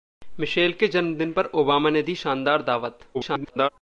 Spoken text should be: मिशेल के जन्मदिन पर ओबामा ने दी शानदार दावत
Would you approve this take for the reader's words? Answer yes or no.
no